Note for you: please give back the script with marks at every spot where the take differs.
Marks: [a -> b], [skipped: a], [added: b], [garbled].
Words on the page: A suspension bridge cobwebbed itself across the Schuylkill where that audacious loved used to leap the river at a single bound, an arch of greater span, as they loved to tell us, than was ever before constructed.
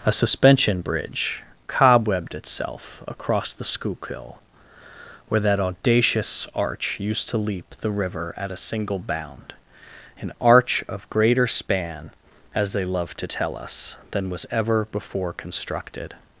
A suspension bridge cobwebbed itself across the Schuylkill where that audacious [loved -> arch] used to leap the river at a single bound, an arch of greater span, as they loved to tell us, than was ever before constructed.